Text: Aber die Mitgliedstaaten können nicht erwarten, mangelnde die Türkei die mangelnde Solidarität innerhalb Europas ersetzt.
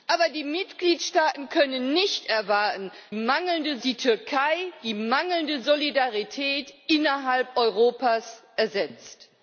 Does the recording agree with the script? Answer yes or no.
yes